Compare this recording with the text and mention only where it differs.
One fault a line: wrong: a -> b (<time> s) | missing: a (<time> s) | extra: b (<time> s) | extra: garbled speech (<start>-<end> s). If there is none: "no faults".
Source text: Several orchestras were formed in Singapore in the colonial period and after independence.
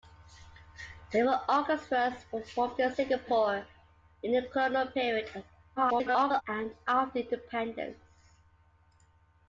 extra: garbled speech (5.8-6.4 s)